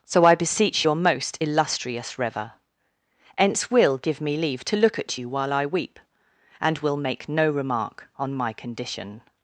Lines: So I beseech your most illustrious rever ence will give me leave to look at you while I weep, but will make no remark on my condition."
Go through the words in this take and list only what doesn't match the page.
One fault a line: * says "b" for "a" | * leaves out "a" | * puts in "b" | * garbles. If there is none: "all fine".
* says "and" for "but"